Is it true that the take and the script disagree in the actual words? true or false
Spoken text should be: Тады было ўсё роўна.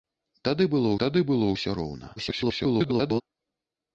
true